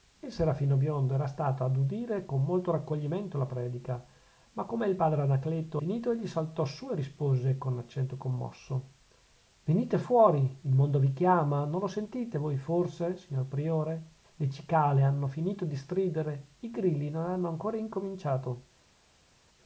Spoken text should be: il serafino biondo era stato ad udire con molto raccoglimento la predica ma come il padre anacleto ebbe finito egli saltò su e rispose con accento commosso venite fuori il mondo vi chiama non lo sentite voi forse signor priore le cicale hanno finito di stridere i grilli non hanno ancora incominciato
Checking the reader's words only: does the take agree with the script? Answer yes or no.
no